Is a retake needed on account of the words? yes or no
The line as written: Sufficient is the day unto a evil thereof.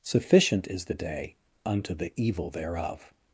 yes